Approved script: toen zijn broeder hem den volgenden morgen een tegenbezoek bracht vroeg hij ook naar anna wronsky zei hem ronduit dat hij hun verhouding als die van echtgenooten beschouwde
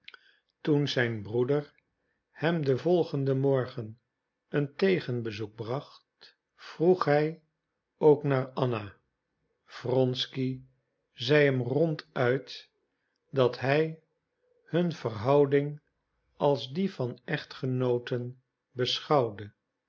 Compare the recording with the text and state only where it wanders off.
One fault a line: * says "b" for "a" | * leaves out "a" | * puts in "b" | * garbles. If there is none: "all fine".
all fine